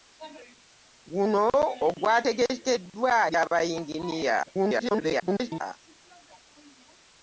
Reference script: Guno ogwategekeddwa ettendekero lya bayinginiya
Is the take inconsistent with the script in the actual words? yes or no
yes